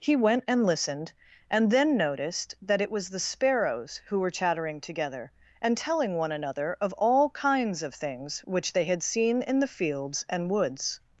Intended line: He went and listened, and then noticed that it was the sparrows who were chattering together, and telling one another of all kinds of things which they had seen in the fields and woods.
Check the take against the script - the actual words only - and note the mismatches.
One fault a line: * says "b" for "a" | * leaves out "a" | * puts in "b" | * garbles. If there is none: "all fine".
all fine